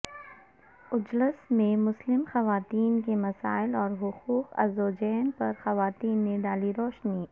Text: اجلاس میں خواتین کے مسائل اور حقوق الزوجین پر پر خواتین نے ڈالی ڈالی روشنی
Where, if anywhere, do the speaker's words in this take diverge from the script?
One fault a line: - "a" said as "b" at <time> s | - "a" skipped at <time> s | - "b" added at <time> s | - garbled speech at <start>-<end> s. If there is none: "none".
- "مسلم" added at 1.8 s
- "پر" skipped at 5.5 s
- "ڈالی" skipped at 6.7 s